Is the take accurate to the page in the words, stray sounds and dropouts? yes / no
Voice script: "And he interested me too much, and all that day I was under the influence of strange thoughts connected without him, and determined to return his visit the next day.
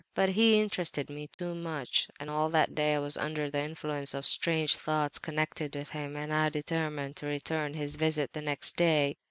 no